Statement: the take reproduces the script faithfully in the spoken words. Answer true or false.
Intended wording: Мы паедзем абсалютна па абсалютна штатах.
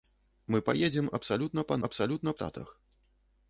true